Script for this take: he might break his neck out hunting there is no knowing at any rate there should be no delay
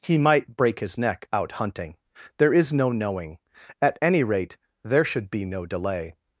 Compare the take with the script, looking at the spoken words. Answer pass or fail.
pass